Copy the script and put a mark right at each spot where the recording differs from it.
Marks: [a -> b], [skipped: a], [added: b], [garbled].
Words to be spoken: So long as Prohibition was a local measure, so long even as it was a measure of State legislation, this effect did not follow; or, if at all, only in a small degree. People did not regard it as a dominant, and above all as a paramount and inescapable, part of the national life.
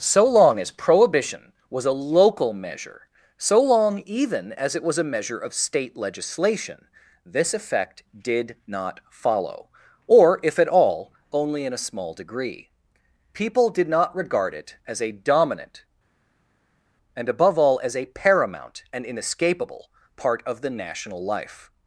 So long as Prohibition was a local measure, so long even as it was a measure of State legislation, this effect did not follow; or, if at all, only in a small degree. People did not regard it as a dominant, and above all as a paramount and inescapable, part of the national life.